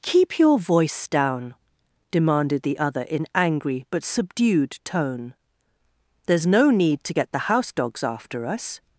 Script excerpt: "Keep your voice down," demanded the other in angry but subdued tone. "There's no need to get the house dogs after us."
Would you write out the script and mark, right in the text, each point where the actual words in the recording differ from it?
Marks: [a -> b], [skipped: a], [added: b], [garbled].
"Keep your voice down," demanded the other in angry but subdued tone. "There's no need to get the house dogs after us."